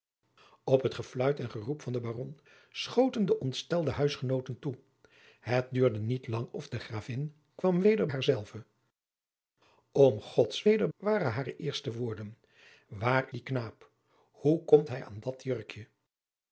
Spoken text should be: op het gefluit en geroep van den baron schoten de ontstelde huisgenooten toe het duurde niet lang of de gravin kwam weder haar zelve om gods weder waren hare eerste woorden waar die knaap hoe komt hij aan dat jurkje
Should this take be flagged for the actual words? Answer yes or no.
no